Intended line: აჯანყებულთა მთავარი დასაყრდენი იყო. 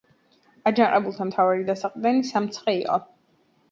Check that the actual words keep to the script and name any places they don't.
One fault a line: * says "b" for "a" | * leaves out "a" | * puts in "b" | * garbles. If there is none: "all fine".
* puts in "სამცხე"